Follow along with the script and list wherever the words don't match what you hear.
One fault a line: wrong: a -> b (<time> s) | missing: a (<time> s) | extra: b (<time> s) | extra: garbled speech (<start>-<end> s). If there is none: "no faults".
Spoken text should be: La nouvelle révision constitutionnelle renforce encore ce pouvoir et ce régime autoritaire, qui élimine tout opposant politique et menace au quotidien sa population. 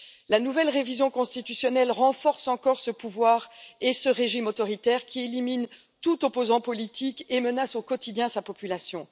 no faults